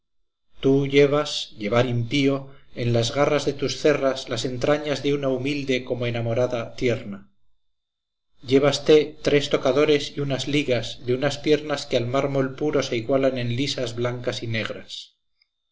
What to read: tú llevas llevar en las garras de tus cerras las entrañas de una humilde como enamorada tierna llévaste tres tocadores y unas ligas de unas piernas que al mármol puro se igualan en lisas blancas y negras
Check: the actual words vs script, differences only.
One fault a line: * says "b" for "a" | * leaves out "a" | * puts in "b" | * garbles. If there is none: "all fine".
* puts in "impío"